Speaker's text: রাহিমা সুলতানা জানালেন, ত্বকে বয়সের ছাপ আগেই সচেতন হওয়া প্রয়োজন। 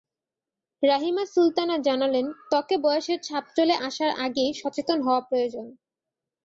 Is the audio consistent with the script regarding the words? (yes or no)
no